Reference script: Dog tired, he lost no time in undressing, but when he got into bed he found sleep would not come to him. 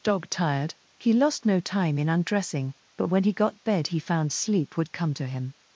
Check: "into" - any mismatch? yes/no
yes